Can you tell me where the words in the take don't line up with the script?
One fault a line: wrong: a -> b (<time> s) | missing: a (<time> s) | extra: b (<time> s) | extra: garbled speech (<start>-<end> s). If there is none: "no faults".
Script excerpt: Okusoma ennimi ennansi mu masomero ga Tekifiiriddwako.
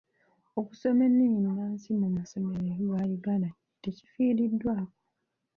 extra: Uganda (3.2 s)